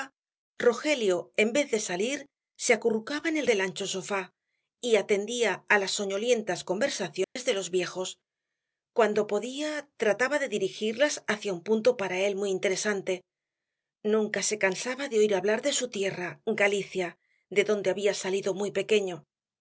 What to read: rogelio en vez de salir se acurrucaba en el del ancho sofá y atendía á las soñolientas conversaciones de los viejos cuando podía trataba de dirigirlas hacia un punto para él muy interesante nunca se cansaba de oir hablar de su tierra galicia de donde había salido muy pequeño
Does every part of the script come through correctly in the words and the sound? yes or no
no